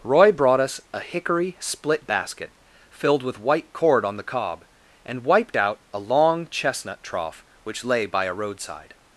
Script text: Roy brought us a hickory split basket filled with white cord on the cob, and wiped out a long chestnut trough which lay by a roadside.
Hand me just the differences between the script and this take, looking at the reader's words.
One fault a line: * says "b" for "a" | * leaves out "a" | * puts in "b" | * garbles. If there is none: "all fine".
all fine